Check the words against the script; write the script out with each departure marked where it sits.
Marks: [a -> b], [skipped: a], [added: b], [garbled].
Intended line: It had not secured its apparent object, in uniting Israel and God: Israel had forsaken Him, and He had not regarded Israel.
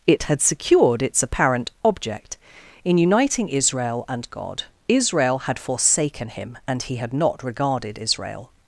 It had [skipped: not] secured its apparent object, in uniting Israel and God: Israel had forsaken Him, and He had not regarded Israel.